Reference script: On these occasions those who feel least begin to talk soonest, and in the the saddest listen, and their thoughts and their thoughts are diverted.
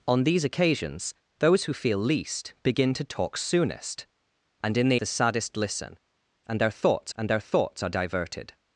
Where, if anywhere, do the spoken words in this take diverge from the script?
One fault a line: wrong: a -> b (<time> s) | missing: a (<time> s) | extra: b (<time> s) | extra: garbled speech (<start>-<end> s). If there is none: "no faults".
no faults